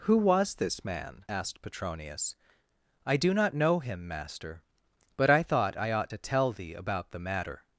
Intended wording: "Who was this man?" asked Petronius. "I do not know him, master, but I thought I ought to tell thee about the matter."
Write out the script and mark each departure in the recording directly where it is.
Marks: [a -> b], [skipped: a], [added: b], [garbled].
"Who was this man?" asked Petronius. "I do not know him, master, but I thought I ought to tell thee about the matter."